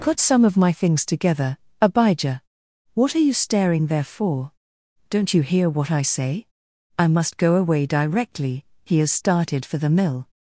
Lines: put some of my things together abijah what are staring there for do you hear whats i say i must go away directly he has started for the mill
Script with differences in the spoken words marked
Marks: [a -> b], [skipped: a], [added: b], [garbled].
put some of my things together abijah what are [added: you] staring there for [do -> don't] you hear [whats -> what] i say i must go away directly he has started for the mill